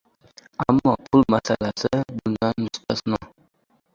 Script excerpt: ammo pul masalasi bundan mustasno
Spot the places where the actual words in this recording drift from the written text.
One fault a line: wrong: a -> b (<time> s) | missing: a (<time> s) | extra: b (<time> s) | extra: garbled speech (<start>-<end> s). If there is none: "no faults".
no faults